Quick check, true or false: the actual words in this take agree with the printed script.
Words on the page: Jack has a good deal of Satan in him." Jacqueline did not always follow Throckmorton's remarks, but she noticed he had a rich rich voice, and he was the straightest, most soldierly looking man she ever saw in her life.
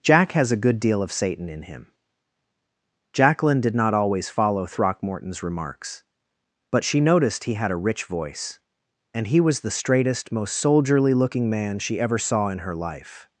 false